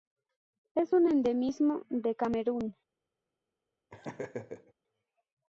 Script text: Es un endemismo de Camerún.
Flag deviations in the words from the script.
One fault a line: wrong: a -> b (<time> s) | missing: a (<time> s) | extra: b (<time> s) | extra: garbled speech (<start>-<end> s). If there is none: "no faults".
no faults